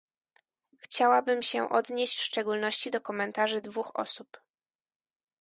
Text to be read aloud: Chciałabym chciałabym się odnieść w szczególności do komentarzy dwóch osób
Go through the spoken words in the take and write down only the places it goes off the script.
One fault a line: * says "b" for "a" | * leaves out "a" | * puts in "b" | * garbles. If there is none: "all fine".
* leaves out "chciałabym"